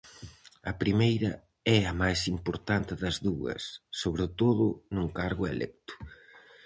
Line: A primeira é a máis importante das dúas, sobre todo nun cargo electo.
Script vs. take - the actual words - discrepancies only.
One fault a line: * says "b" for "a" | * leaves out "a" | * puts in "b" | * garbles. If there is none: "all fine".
all fine